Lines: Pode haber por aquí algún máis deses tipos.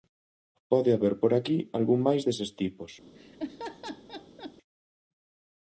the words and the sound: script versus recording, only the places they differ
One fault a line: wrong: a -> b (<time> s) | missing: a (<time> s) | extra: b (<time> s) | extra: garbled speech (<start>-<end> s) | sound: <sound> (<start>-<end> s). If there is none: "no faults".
sound: laugh (3.1-4.5 s)